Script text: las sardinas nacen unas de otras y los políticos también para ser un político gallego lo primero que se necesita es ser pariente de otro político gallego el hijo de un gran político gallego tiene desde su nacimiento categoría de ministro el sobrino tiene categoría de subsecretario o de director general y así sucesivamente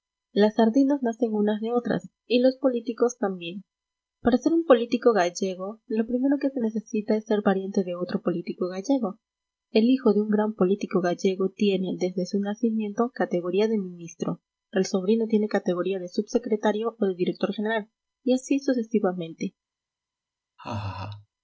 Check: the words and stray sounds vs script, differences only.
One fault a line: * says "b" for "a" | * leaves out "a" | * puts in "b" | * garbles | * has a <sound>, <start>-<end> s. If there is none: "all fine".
* has a laugh, 20.6-21.3 s